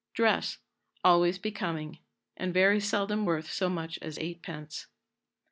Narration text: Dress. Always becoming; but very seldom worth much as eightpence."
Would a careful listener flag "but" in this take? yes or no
yes